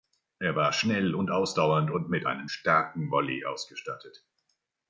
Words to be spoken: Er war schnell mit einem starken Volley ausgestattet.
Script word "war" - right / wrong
right